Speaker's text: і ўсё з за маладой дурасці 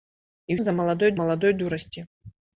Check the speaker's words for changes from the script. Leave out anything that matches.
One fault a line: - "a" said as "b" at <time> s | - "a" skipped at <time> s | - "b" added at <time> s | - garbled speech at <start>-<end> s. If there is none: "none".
- "ўсё" skipped at 0.6 s
- "маладой" added at 1.2 s